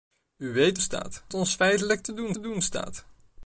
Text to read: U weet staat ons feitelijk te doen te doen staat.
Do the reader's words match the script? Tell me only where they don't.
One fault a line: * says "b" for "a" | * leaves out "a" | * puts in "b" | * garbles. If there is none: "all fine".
all fine